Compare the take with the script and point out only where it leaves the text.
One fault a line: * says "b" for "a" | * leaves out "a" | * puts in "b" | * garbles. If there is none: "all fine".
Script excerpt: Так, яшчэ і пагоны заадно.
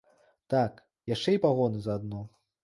all fine